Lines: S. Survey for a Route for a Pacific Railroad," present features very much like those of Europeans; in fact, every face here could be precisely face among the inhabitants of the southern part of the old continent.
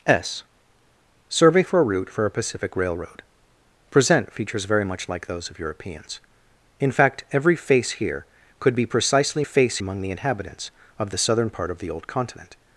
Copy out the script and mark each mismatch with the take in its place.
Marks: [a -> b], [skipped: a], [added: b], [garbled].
S. Survey for a Route for a Pacific Railroad," present features very much like those of Europeans; in fact, every face here could be precisely face among the inhabitants of the southern part of the old continent.